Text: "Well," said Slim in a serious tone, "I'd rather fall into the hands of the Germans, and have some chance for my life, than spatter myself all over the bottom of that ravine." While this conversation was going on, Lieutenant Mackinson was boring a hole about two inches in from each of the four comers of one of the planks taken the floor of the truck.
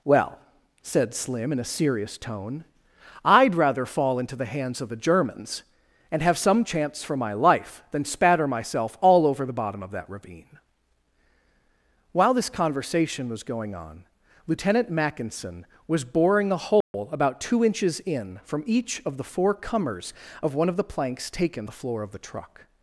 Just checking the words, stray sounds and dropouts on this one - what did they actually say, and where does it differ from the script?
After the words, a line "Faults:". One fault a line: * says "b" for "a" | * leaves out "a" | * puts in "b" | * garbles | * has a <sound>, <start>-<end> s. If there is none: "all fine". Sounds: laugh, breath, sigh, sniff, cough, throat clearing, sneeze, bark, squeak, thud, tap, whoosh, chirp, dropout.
"Well," said Slim in a serious tone, "I'd rather fall into the hands of the Germans, and have some chance for my life, than spatter myself all over the bottom of that ravine." While this conversation was going on, Lieutenant Mackinson was boring a hole about two inches in from each of the four comers of one of the planks taken the floor of the truck.
Faults:
* has a dropout, 16.8-16.9 s